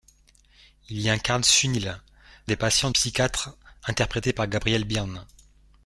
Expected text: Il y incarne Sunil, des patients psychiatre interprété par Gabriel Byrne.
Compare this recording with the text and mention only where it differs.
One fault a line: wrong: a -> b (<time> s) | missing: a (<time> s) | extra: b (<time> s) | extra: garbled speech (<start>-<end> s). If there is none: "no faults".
no faults